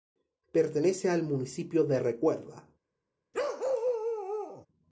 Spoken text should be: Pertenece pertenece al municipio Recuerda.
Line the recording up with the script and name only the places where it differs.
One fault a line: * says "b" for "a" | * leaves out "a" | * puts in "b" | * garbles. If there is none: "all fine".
* leaves out "pertenece"
* puts in "de"